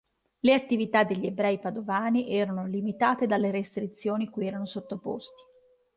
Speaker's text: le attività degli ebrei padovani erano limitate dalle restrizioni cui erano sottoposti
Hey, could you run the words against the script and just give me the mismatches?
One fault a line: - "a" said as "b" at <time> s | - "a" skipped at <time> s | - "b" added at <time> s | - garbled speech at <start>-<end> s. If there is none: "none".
none